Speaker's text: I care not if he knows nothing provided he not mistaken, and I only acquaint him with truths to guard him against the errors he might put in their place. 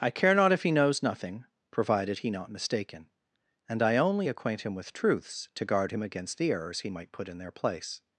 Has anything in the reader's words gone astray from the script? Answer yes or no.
no